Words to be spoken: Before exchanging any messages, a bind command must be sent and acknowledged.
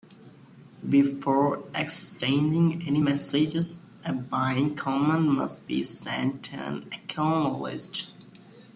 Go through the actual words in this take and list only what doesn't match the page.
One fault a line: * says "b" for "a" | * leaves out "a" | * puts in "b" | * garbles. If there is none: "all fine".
all fine